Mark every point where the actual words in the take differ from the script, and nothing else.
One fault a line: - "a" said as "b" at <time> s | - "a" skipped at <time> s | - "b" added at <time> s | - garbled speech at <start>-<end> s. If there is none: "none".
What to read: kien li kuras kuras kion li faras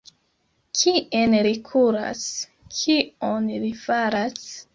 - "kuras" skipped at 2.2 s